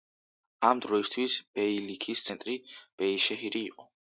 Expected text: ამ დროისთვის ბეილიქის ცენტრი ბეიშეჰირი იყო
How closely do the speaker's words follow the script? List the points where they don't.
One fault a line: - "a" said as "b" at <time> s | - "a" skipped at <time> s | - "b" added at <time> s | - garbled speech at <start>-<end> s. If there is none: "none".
none